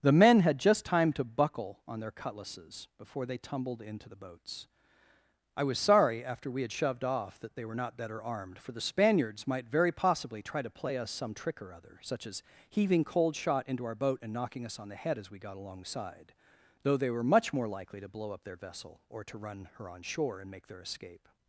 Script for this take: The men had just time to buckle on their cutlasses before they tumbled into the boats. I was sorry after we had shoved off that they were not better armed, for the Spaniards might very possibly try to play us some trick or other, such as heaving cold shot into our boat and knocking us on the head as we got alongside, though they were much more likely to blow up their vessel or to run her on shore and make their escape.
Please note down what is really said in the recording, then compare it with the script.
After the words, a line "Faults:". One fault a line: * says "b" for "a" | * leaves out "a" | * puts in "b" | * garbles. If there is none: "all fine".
The men had just time to buckle on their cutlasses before they tumbled into the boats. I was sorry after we had shoved off that they were not better armed, for the Spaniards might very possibly try to play us some trick or other, such as heaving cold shot into our boat and knocking us on the head as we got alongside, though they were much more likely to blow up their vessel or to run her on shore and make their escape.
Faults:
all fine